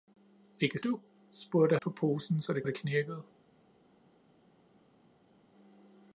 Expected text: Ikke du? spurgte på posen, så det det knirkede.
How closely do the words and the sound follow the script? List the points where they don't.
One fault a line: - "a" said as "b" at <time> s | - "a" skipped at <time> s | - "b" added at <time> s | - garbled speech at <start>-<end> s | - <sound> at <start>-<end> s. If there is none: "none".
none